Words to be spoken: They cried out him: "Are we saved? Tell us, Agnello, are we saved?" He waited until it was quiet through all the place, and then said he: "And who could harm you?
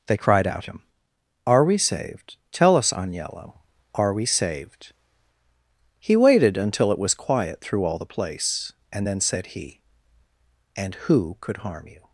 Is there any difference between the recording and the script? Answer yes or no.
no